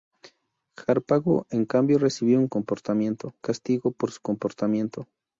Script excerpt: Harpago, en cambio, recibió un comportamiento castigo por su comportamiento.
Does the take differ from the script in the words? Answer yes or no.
no